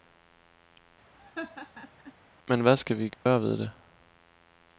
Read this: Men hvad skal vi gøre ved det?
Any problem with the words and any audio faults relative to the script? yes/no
yes